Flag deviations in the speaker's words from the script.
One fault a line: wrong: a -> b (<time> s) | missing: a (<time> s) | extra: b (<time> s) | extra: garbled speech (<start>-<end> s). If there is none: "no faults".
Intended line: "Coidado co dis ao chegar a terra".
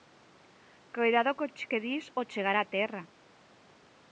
extra: que (1.7 s)